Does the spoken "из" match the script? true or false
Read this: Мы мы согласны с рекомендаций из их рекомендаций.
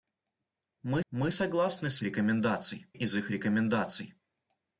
true